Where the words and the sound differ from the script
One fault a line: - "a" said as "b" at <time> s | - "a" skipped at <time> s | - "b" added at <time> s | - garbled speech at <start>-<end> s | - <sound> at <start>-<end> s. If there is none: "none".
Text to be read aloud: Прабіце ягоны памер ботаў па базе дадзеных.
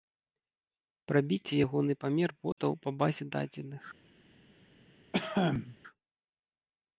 - dropout at 2.5-2.6 s
- cough at 5.1-5.8 s